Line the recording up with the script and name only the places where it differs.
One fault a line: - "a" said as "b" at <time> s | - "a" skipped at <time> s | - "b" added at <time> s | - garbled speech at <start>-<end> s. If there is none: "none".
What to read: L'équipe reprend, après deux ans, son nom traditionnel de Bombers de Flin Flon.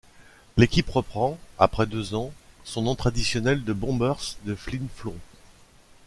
none